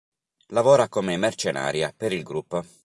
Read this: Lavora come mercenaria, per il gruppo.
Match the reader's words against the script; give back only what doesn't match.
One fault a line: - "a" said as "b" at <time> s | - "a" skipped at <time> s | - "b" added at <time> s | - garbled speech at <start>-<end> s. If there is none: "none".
none